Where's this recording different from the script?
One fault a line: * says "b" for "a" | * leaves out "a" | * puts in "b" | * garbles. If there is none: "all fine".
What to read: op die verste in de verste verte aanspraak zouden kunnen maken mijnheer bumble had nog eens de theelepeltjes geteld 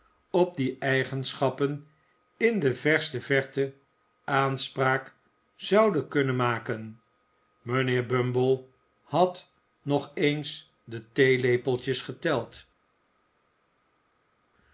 * says "eigenschappen" for "verste"